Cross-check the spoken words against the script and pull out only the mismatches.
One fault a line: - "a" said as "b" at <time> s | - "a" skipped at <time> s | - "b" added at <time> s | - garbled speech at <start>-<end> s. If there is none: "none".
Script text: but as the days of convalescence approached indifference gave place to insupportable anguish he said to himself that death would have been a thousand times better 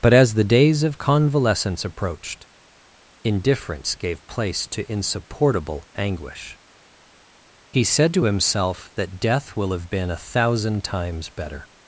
- "would" said as "will" at 9.6 s